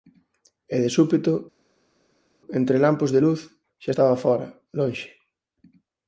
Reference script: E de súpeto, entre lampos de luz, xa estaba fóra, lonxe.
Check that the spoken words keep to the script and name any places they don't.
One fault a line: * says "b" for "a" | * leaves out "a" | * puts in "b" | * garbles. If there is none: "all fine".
all fine